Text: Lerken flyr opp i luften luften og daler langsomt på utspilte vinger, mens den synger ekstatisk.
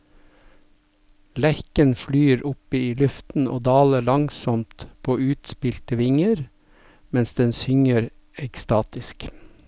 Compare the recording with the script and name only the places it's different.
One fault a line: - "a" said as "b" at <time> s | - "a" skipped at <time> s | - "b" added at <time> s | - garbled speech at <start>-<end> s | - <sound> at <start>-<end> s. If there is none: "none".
- "luften" skipped at 3.5 s